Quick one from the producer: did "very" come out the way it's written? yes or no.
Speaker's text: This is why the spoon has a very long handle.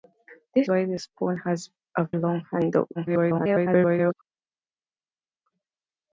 no